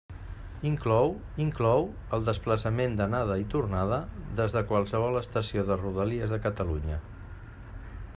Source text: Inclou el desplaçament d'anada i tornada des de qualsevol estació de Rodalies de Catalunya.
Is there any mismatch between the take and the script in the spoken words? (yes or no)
yes